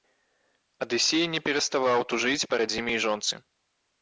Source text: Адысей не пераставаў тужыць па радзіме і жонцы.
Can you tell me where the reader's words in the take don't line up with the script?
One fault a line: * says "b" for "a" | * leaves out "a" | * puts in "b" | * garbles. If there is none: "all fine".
all fine